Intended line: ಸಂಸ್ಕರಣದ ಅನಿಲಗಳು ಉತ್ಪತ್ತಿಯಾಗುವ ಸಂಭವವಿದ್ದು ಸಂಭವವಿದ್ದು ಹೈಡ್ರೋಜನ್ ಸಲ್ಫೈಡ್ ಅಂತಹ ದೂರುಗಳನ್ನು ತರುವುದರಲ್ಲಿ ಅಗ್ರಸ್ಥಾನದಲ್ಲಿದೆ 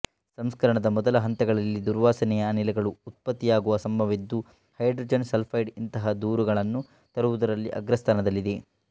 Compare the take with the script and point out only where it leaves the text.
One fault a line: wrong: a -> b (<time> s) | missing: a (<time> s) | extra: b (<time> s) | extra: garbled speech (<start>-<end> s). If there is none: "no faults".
extra: ಮೊದಲ ಹಂತಗಳಲ್ಲಿ ದುರ್ವಾಸನೆಯ (0.9 s)
missing: ಸಂಭವವಿದ್ದು (4.4 s)
wrong: ಅಂತಹ -> ಇಂತಹ (5.8 s)